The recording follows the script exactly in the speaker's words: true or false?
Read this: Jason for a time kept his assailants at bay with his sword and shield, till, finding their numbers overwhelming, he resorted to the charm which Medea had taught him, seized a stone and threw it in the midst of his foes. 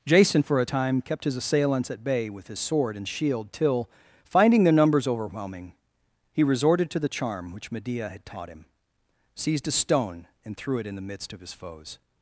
true